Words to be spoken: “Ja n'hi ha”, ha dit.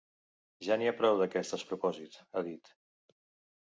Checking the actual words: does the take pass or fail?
fail